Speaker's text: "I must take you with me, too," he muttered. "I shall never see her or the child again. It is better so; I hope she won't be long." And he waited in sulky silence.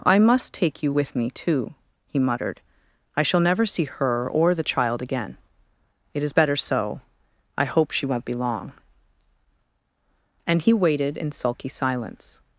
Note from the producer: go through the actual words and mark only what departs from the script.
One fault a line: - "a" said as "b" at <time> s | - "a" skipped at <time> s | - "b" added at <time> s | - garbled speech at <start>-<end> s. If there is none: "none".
none